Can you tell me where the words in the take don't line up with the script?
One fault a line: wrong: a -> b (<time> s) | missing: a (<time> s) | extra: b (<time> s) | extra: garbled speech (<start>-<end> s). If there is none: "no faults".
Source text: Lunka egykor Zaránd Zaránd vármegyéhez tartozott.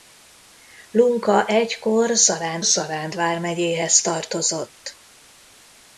no faults